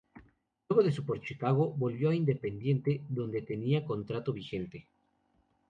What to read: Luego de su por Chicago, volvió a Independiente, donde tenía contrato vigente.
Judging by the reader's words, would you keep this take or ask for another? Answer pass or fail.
pass